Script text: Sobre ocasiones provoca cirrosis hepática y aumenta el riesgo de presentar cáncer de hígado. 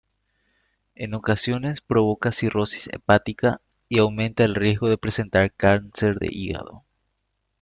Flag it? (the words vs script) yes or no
yes